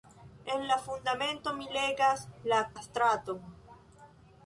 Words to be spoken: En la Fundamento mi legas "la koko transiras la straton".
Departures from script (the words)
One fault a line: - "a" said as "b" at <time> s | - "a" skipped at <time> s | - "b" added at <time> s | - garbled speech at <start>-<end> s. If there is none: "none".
- "koko transiras" skipped at 2.6 s